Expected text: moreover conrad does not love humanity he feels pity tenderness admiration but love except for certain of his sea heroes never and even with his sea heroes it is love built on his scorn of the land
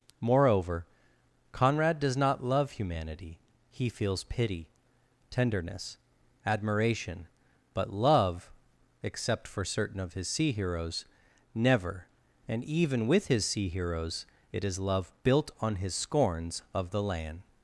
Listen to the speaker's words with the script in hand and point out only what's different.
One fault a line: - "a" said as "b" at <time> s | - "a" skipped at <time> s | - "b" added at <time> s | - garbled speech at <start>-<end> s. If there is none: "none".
- "scorn" said as "scorns" at 15.9 s